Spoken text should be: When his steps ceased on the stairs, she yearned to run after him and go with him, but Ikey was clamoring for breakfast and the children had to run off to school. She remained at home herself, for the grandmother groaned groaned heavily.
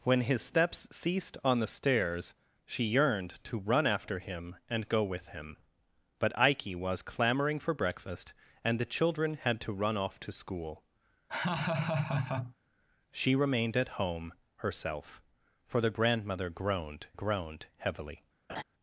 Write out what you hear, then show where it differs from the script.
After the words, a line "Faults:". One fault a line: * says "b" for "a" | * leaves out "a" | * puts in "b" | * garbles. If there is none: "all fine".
When his steps ceased on the stairs, she yearned to run after him and go with him, but Ikey was clamoring for breakfast and the children had to run off to school. She remained at home herself, for the grandmother groaned groaned heavily.
Faults:
all fine